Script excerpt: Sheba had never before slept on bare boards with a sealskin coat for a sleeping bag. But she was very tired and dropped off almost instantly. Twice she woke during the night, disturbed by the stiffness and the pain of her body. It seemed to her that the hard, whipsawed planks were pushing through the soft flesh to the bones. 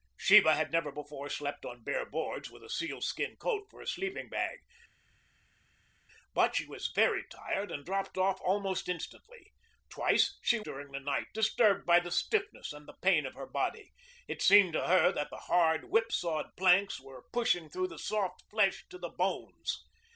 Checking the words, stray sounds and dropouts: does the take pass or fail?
fail